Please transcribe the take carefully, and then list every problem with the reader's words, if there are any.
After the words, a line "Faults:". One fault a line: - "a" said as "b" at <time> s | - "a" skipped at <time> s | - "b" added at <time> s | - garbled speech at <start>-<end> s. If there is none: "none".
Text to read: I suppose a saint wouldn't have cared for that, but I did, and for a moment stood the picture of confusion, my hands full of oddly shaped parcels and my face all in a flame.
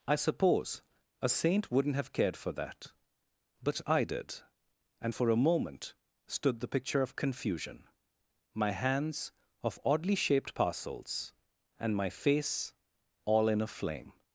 I suppose a saint wouldn't have cared for that, but I did, and for a moment stood the picture of confusion, my hands of oddly shaped parcels and my face all in a flame.
Faults:
- "full" skipped at 9.3 s